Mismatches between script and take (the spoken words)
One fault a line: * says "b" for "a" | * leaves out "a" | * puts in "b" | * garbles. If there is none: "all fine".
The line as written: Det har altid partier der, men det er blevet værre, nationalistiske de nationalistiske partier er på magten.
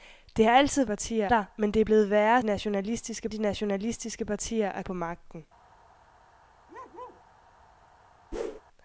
all fine